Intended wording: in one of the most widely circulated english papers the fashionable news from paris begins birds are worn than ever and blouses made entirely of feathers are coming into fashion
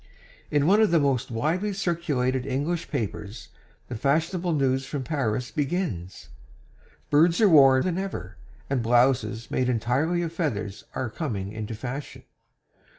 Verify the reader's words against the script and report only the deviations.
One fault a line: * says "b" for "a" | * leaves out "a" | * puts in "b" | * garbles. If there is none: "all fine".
all fine